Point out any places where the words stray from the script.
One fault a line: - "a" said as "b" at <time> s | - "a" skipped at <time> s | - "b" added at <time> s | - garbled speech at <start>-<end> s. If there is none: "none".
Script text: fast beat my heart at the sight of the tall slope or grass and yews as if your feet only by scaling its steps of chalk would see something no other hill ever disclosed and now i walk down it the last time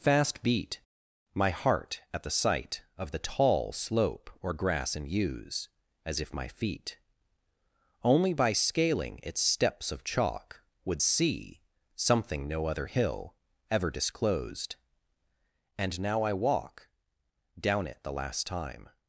- "your" said as "my" at 6.3 s